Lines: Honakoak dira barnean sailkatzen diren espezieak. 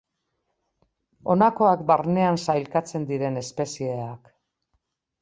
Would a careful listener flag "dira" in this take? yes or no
yes